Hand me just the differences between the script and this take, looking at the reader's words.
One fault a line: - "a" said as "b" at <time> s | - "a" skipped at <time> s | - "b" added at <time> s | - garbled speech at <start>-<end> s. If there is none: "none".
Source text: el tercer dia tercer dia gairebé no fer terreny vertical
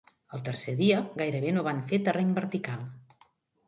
- "tercer dia" skipped at 1.0 s
- "van" added at 1.7 s